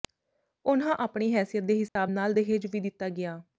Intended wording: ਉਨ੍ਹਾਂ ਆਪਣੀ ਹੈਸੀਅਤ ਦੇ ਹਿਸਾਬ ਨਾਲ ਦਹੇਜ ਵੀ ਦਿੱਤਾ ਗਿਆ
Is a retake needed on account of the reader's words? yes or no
no